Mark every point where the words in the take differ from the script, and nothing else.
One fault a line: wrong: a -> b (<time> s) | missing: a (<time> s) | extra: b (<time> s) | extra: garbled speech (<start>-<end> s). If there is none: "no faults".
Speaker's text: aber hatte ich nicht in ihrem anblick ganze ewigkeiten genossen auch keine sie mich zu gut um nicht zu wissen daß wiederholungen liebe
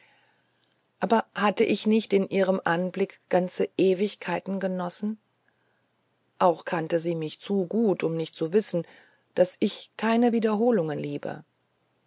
wrong: keine -> kannte (6.6 s)
extra: ich keine (9.6 s)